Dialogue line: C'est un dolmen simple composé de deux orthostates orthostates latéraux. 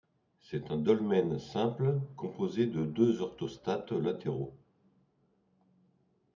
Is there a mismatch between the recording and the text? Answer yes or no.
yes